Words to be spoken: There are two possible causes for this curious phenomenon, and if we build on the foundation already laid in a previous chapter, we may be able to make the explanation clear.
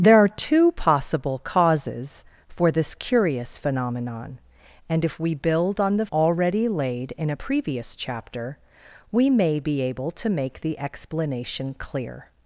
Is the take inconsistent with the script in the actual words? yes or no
yes